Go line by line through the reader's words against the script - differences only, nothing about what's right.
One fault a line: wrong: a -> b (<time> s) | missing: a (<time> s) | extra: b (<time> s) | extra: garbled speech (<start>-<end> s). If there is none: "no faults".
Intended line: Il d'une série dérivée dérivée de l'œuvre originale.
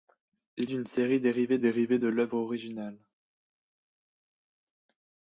no faults